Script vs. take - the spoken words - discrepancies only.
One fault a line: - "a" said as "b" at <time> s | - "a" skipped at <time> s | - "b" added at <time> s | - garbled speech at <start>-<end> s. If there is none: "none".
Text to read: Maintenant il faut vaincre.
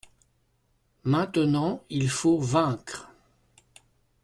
none